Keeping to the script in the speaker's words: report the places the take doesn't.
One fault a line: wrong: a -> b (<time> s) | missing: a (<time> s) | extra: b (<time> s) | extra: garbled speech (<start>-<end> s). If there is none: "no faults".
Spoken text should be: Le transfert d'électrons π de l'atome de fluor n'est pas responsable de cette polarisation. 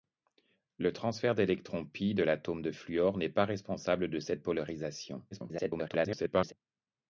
extra: garbled speech (5.3-6.5 s)